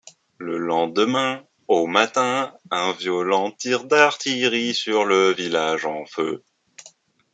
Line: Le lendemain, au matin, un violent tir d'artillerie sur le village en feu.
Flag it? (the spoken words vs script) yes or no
no